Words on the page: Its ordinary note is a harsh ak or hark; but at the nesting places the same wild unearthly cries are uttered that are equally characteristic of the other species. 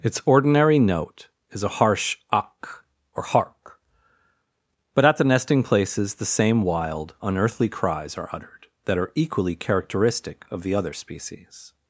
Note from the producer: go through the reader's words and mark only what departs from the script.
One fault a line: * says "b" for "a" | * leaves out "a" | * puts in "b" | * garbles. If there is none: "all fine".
all fine